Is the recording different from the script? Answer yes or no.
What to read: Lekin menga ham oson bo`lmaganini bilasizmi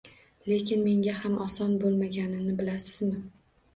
no